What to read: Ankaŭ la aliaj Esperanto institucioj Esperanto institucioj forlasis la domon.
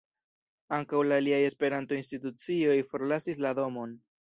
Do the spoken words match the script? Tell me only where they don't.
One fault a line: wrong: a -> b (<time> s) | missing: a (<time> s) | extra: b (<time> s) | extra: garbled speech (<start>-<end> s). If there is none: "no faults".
missing: Esperanto institucioj (2.8 s)